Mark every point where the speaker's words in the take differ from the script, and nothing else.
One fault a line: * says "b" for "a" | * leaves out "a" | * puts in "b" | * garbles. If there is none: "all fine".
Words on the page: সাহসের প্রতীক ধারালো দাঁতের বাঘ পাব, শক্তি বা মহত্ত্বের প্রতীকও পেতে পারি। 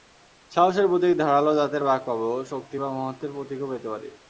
all fine